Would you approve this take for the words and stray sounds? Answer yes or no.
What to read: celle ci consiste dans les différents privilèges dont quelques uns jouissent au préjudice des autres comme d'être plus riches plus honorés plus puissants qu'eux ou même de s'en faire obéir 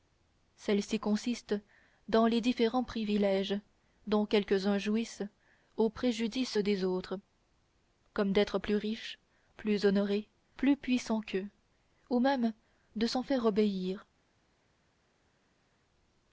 yes